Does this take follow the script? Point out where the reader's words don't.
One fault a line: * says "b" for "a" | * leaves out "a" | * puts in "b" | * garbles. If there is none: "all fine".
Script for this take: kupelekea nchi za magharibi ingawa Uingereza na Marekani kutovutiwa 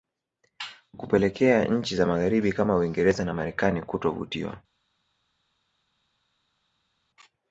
* says "kama" for "ingawa"